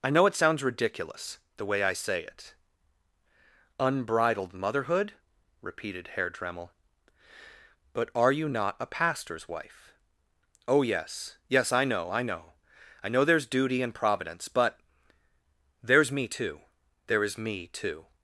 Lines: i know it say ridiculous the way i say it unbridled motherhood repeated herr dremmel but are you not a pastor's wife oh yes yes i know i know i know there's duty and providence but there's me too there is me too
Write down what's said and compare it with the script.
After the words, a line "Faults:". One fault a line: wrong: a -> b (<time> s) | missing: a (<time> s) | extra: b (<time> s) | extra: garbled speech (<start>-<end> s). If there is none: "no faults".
i know it sounds ridiculous the way i say it unbridled motherhood repeated herr dremmel but are you not a pastor's wife oh yes yes i know i know i know there's duty and providence but there's me too there is me too
Faults:
wrong: say -> sounds (0.3 s)